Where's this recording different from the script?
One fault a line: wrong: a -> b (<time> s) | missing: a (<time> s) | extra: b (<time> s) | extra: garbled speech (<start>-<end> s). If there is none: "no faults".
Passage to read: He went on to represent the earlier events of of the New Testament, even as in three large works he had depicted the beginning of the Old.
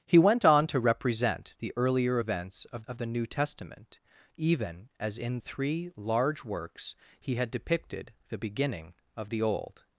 no faults